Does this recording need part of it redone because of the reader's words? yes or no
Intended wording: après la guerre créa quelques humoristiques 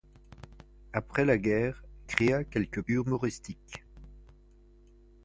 no